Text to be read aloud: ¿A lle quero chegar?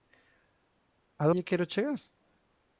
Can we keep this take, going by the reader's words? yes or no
yes